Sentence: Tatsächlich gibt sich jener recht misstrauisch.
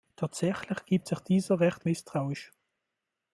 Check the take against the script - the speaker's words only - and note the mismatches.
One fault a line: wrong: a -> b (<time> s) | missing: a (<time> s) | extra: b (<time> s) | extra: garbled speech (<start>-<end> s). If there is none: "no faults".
wrong: jener -> dieser (1.2 s)